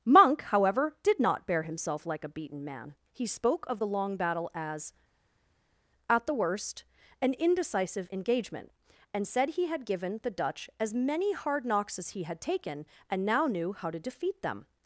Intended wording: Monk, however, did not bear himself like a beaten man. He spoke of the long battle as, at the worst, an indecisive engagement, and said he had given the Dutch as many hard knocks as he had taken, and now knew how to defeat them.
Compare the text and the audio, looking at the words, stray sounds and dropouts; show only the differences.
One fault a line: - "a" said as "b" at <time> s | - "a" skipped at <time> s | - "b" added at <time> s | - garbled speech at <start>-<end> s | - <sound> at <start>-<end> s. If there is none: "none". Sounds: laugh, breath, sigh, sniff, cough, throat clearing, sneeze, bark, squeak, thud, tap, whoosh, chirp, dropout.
none